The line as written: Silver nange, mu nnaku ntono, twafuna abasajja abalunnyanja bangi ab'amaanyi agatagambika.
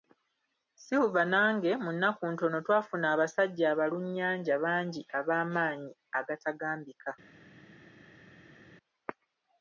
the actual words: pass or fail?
pass